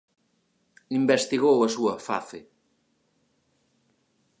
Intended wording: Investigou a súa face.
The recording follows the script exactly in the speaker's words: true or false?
true